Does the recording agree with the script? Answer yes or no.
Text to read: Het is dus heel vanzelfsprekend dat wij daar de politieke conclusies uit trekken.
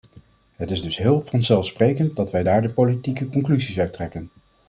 yes